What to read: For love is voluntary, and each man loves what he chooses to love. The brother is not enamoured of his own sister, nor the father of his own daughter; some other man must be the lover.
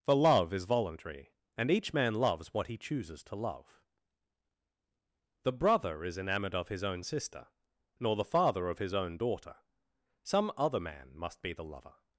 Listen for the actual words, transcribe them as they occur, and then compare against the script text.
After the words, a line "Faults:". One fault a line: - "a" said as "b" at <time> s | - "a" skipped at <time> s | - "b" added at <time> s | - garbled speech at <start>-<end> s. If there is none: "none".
For love is voluntary, and each man loves what he chooses to love. The brother is enamoured of his own sister, nor the father of his own daughter; some other man must be the lover.
Faults:
- "not" skipped at 6.2 s